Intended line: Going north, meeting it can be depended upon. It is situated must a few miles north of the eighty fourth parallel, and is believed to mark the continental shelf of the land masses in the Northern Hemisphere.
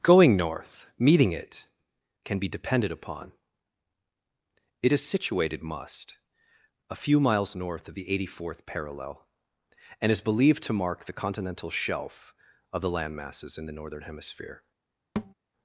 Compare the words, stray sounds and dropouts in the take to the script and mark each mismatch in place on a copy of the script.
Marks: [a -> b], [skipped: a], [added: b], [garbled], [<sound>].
Going north, meeting it can be depended upon. It is situated must a few miles north of the eighty fourth parallel, and is believed to mark the continental shelf of the land masses in the Northern Hemisphere. [thud]